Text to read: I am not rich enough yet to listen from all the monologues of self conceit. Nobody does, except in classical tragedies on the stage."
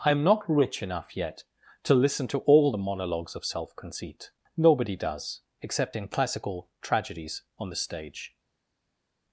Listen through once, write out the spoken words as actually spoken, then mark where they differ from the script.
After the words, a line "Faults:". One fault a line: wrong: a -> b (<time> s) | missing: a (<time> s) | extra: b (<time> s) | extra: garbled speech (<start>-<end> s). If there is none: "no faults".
I am not rich enough yet to listen to all the monologues of self conceit. Nobody does, except in classical tragedies on the stage."
Faults:
wrong: from -> to (2.3 s)